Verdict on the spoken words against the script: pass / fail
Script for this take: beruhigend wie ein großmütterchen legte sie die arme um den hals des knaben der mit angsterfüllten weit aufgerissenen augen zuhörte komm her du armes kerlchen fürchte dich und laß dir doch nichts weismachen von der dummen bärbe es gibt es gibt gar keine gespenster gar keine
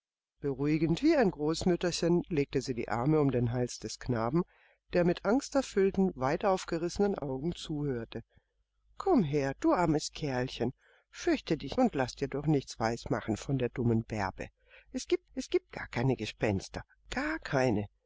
pass